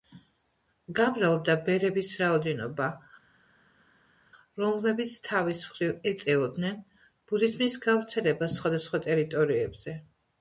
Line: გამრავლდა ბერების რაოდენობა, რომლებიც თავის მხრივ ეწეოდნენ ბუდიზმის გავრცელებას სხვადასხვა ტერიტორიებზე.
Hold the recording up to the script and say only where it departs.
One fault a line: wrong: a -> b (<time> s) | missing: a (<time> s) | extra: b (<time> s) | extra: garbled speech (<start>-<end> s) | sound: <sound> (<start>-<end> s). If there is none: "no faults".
no faults